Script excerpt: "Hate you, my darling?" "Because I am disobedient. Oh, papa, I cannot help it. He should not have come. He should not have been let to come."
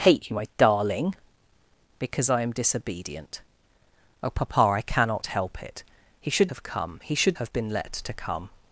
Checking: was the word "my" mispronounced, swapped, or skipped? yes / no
no